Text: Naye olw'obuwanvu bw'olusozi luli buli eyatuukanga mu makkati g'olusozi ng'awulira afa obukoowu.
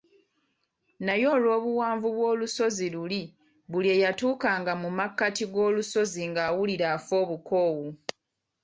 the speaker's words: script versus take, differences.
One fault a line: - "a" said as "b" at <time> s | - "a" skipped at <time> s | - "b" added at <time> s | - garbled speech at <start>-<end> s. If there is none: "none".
none